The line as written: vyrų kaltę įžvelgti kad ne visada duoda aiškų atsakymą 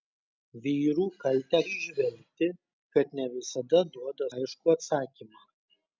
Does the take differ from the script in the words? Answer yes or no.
no